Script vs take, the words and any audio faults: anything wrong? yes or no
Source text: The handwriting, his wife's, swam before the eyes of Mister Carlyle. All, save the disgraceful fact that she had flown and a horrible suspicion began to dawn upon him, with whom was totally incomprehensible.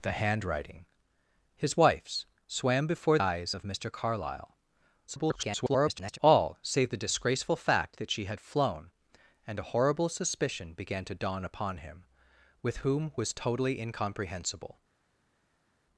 yes